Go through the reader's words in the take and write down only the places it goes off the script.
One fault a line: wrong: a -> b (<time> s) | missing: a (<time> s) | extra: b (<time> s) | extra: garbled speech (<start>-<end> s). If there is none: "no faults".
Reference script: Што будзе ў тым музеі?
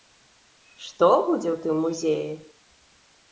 no faults